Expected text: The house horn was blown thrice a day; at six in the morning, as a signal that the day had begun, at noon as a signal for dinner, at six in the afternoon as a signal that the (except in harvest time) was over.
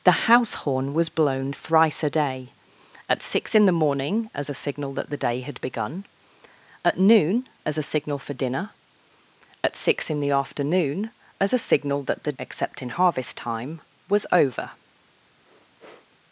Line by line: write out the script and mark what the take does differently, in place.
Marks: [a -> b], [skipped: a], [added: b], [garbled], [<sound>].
The house horn was blown thrice a day; at six in the morning, as a signal that the day had begun, at noon as a signal for dinner, at six in the afternoon as a signal that the (except in harvest time) was over. [sniff]